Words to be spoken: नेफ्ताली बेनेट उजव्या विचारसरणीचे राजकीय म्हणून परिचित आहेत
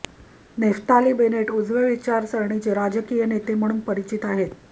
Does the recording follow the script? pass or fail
fail